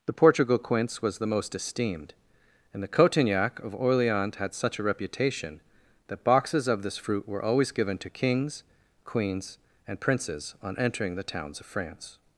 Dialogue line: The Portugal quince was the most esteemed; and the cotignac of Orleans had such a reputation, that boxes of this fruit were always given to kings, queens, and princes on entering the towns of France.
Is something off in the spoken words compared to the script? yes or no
no